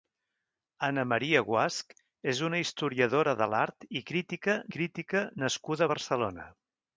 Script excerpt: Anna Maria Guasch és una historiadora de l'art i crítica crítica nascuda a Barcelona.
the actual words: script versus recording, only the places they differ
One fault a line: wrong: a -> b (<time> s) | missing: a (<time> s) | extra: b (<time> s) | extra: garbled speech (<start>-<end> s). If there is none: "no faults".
no faults